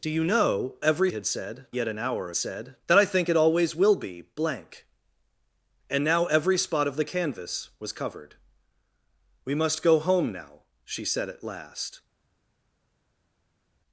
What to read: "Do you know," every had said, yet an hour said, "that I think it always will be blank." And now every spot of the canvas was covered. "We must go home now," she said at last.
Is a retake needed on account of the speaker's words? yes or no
no